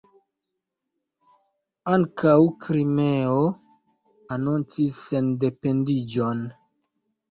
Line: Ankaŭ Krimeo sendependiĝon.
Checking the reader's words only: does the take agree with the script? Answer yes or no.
no